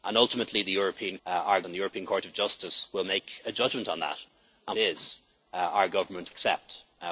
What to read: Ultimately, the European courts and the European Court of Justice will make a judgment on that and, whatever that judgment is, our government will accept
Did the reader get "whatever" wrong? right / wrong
wrong